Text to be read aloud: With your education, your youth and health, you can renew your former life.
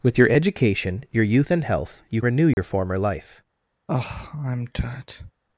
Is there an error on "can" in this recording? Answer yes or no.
yes